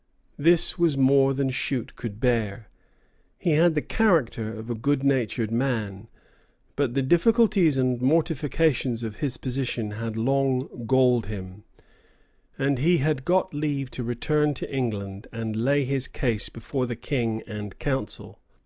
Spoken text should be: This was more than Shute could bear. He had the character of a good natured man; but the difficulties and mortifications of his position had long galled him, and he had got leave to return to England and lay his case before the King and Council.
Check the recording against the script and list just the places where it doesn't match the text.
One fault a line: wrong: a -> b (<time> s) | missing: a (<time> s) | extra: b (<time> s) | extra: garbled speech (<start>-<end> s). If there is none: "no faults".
no faults